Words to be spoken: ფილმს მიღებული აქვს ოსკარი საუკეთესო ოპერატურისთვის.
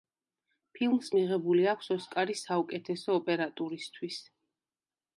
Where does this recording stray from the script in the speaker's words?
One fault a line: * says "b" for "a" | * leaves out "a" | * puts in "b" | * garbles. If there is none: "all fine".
all fine